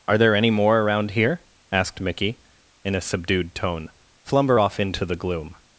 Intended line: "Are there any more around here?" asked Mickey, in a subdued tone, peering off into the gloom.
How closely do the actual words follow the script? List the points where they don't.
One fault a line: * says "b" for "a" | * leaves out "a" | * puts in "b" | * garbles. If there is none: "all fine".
* says "flumber" for "peering"